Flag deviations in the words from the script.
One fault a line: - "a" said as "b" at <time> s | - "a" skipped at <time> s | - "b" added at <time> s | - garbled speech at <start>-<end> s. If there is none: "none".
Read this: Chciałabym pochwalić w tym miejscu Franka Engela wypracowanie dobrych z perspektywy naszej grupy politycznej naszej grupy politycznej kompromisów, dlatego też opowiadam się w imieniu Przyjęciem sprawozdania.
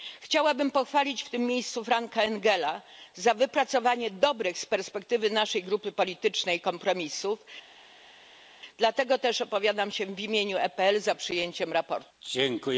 - "za" added at 3.1 s
- "naszej grupy politycznej" skipped at 6.6 s
- "PPE za" added at 10.6 s